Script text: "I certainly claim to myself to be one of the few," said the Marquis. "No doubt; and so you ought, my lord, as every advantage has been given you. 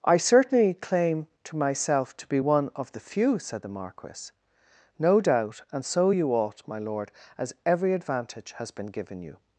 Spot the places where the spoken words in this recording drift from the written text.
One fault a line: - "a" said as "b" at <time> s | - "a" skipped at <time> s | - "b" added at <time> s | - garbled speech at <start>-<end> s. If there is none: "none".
none